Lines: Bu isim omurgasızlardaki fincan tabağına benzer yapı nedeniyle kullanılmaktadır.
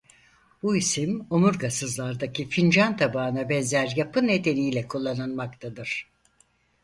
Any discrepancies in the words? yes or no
no